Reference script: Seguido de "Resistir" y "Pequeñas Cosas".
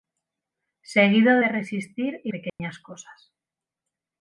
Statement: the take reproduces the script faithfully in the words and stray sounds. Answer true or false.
false